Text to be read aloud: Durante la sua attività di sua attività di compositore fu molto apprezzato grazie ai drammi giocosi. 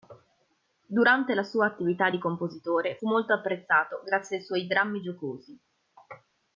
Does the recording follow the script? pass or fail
fail